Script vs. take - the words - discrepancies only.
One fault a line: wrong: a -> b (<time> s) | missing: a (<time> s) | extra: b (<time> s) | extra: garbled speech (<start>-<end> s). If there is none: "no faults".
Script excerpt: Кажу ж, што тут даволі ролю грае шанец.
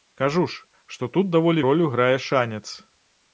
no faults